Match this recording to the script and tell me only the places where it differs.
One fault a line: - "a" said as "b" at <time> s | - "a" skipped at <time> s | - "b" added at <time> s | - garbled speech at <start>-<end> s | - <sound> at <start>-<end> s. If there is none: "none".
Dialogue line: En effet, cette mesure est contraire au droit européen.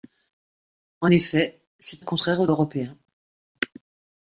- "mesure" skipped at 2.1 s
- "droit" skipped at 2.5 s